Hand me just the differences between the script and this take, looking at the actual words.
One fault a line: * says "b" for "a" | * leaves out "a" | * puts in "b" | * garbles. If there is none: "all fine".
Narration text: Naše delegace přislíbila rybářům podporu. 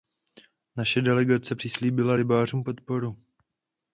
all fine